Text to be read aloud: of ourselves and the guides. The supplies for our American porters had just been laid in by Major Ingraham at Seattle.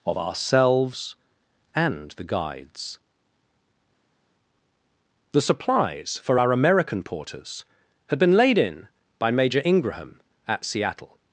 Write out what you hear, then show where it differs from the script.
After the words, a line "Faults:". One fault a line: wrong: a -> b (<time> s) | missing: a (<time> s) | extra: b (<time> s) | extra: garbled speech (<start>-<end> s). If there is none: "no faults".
of ourselves and the guides. The supplies for our American porters had been laid in by Major Ingraham at Seattle.
Faults:
missing: just (8.2 s)